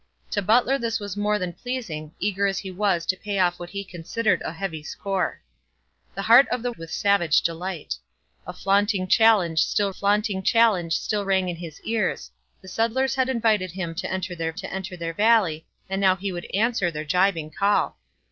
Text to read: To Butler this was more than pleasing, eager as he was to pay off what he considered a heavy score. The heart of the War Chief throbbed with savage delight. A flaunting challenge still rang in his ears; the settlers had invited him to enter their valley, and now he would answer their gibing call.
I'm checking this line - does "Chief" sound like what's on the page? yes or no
no